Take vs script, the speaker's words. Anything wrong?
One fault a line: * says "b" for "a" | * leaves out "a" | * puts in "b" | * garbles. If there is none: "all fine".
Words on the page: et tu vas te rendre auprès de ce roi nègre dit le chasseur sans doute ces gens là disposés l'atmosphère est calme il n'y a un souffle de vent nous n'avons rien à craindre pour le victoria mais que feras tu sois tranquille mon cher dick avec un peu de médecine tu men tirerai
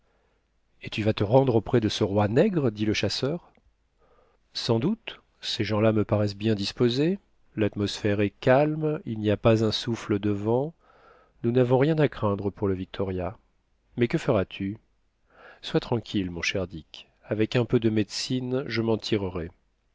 * puts in "me paraissent bien"
* puts in "pas"
* says "je" for "tu"